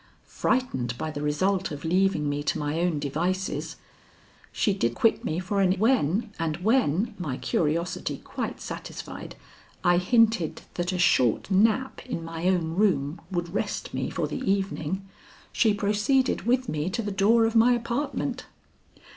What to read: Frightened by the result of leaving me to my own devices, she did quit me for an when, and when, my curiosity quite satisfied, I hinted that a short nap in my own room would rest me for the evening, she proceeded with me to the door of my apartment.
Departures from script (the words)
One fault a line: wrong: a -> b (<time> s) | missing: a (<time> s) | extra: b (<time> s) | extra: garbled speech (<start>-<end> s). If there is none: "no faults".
no faults